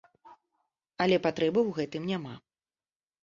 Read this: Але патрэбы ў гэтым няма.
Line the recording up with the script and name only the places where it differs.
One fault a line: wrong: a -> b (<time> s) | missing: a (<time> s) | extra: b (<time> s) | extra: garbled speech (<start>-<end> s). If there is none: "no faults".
no faults